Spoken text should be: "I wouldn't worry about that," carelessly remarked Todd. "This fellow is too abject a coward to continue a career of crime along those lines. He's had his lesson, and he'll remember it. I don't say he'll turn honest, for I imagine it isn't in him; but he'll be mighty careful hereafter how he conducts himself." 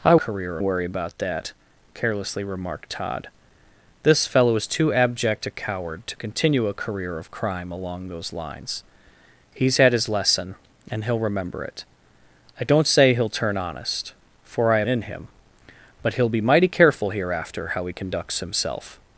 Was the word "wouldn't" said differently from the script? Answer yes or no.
yes